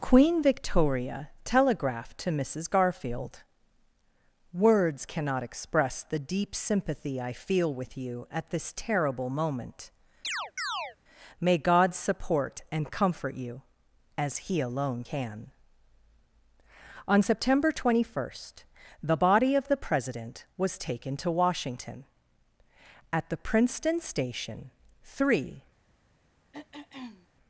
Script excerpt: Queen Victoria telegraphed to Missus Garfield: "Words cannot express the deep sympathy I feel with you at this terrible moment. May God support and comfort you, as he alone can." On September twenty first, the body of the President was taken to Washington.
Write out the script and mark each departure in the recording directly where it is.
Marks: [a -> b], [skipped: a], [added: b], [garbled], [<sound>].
Queen Victoria telegraphed to Missus Garfield: "Words cannot express the deep sympathy I feel with you at this terrible moment. [chirp] May God support and comfort you, as he alone can." On September twenty first, the body of the President was taken to Washington. [added: At the Princeton Station three] [throat clearing]